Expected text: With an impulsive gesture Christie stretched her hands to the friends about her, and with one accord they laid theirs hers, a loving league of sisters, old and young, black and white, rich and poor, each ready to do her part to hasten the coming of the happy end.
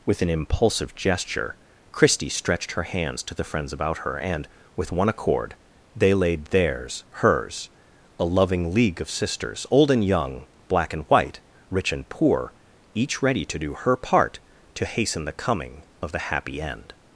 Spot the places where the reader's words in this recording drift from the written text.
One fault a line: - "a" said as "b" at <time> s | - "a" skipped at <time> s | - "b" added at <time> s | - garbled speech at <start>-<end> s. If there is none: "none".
none